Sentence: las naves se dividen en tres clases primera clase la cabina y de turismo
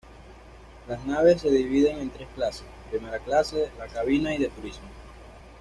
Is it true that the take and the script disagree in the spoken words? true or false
false